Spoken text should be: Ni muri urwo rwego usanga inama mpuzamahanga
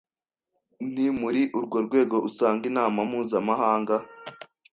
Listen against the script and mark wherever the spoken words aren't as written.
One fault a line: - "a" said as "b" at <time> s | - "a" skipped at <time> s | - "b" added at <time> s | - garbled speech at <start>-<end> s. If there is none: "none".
none